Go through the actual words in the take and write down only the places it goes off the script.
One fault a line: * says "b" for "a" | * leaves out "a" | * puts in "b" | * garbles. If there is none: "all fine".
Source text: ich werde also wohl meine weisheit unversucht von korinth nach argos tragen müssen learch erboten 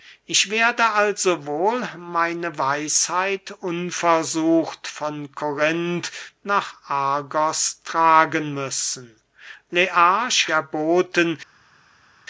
all fine